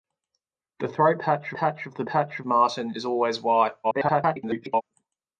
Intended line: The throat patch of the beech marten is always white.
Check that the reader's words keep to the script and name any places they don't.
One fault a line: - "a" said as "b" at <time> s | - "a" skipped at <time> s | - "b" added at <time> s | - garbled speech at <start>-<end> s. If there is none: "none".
- "patch" added at 1.5 s
- "beech" said as "patch" at 2.1 s
- garbled speech at 3.8-4.8 s